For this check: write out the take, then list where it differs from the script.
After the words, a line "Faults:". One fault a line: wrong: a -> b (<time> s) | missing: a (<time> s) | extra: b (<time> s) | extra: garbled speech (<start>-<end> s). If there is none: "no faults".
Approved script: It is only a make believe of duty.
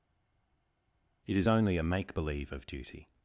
It is only a make believe of duty.
Faults:
no faults